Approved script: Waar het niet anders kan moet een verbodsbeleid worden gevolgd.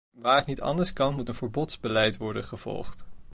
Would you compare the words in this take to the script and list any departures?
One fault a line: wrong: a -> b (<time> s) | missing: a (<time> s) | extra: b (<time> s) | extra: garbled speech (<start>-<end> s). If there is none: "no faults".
no faults